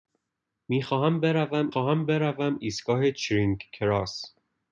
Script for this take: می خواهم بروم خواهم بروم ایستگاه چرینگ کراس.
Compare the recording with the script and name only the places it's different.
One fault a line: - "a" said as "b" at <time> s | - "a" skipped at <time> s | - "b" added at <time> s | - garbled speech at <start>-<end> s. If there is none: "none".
none